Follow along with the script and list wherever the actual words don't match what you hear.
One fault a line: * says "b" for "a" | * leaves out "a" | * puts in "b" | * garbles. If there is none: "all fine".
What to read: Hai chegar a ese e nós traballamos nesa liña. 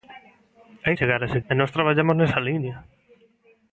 all fine